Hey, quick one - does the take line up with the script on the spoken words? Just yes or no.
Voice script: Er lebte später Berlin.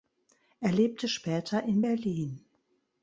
no